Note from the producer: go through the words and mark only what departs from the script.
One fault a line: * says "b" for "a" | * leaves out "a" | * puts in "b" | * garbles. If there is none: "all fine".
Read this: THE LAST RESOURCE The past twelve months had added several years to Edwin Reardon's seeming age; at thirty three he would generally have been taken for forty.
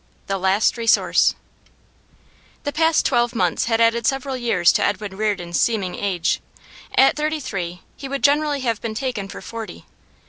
all fine